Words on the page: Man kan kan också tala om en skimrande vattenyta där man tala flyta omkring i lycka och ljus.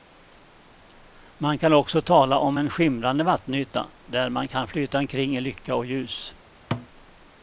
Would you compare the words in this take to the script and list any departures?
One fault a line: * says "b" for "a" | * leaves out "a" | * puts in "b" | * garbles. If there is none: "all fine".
* leaves out "kan"
* says "kan" for "tala"